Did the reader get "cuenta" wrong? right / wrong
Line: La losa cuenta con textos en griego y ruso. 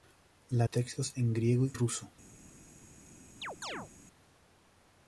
wrong